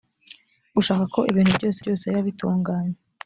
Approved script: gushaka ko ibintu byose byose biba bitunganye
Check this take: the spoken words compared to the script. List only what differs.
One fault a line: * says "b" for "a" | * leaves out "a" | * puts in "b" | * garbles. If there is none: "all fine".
all fine